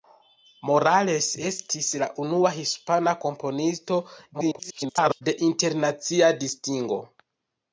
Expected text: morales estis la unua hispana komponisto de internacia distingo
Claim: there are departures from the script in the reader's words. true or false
true